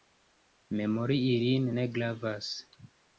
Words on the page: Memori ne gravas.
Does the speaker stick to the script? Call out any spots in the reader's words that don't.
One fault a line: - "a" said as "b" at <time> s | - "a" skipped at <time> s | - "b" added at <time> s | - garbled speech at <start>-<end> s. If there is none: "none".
- "ilin" added at 1.3 s